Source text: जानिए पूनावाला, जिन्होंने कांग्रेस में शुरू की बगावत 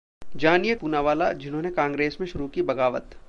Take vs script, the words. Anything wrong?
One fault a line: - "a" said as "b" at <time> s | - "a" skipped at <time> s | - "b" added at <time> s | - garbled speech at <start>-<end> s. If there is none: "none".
none